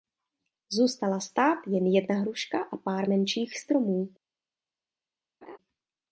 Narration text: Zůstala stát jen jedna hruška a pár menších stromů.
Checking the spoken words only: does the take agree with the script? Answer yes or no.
yes